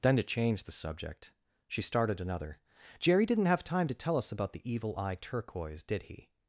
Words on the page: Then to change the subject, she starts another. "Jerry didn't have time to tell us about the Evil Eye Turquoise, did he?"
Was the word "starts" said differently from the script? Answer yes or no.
yes